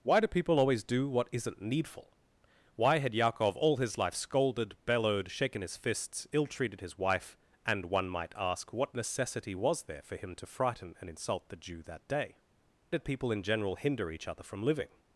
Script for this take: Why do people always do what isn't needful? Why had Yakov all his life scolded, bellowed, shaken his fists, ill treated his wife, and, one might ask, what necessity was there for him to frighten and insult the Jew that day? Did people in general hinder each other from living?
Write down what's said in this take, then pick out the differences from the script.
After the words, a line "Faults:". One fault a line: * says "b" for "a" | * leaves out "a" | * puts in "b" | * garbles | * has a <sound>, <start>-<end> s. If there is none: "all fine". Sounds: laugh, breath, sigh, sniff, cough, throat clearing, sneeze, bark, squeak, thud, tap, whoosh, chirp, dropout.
Why do people always do what isn't needful? Why had Yakov all his life scolded, bellowed, shaken his fists, ill treated his wife, and, one might ask, what necessity was there for him to frighten and insult the Jew that day? Did people in general hinder each other from living?
Faults:
all fine